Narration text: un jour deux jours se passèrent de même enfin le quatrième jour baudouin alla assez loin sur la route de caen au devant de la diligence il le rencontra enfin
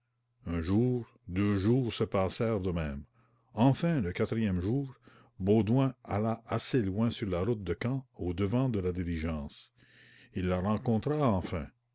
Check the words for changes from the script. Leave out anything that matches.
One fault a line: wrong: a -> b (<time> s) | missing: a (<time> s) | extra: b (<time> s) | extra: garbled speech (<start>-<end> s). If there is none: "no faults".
wrong: le -> la (10.5 s)